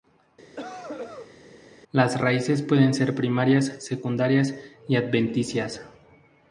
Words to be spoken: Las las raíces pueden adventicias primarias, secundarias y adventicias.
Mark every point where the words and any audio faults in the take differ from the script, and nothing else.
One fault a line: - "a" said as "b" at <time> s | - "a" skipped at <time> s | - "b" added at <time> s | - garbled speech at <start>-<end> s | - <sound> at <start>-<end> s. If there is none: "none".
- cough at 0.6-1.4 s
- "las" skipped at 2.2 s
- "adventicias" said as "ser" at 2.9 s